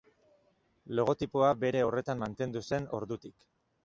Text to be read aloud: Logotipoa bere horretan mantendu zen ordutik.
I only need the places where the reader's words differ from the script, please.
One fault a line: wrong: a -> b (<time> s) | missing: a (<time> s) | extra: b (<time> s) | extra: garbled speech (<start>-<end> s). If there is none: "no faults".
no faults